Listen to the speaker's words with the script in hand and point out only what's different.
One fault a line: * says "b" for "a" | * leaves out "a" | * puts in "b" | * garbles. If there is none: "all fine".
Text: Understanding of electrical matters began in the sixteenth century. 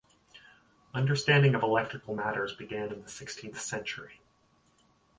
all fine